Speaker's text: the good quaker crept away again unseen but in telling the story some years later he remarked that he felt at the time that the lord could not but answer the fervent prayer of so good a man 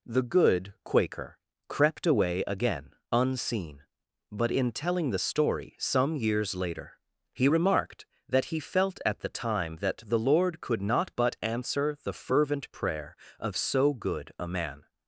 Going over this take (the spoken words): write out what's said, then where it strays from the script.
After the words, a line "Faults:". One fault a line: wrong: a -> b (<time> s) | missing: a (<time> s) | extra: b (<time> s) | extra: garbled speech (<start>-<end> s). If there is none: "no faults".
the good quaker crept away again unseen but in telling the story some years later he remarked that he felt at the time that the lord could not but answer the fervent prayer of so good a man
Faults:
no faults